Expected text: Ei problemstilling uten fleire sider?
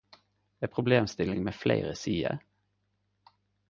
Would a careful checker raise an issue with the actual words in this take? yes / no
yes